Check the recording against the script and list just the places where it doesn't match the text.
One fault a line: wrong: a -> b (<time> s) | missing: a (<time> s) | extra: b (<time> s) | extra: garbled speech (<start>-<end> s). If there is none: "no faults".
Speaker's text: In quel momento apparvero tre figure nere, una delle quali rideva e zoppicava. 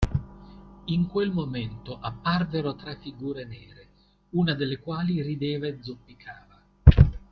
no faults